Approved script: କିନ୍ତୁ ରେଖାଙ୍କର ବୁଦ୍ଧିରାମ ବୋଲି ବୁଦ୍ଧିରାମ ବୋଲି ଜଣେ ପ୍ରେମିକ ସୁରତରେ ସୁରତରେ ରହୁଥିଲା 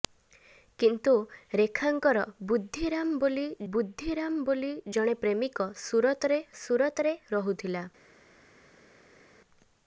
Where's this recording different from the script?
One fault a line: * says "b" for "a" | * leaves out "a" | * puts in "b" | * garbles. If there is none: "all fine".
all fine